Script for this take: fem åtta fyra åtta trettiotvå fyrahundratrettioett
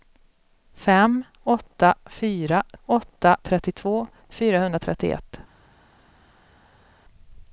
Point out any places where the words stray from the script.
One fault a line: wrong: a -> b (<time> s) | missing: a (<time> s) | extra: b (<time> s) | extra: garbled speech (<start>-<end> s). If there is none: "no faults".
no faults